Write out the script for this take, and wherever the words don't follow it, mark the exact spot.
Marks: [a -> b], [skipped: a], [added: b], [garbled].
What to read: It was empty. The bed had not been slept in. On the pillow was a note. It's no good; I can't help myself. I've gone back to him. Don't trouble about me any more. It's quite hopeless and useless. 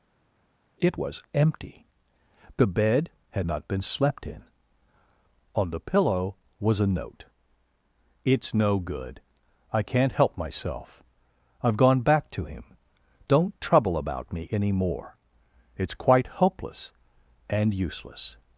It was empty. The bed had not been slept in. On the pillow was a note. It's no good; I can't help myself. I've gone back to him. Don't trouble about me any more. It's quite hopeless and useless.